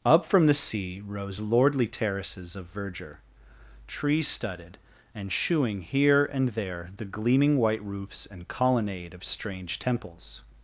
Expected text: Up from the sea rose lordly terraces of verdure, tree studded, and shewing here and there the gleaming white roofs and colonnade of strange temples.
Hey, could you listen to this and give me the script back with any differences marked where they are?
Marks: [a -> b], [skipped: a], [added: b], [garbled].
Up from the sea rose lordly terraces of verdure, tree studded, and shewing here and there the gleaming white roofs and colonnade of strange temples.